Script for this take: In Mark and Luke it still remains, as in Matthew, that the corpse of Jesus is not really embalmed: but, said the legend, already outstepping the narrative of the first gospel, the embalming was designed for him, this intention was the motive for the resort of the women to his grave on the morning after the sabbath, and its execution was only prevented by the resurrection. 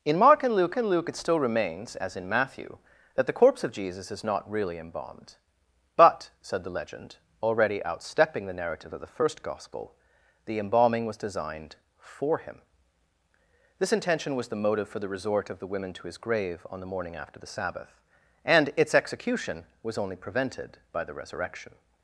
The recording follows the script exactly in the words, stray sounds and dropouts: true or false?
false